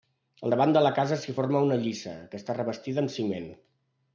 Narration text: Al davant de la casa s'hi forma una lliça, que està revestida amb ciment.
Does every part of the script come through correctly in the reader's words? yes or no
yes